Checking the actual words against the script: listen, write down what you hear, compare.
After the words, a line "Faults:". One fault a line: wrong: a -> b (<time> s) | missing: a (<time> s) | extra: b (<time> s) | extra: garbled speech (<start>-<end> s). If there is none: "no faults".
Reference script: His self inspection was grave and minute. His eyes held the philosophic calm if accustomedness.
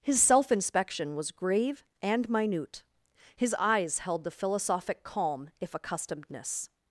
His self inspection was grave and minute. His eyes held the philosophic calm if accustomedness.
Faults:
no faults